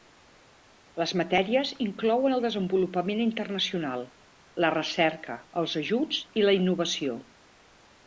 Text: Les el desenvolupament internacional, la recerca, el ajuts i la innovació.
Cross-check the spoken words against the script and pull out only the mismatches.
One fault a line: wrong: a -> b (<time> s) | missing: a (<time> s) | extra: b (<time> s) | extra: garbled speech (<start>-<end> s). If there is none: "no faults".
extra: matèries inclouen (1.2 s)
wrong: el -> els (5.7 s)